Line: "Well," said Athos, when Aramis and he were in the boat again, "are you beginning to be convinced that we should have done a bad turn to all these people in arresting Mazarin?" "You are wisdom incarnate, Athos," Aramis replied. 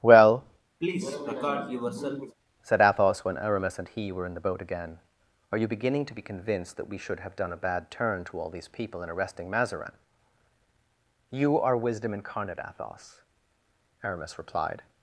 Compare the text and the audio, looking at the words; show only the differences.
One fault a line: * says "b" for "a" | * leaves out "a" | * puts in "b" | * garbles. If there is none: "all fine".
all fine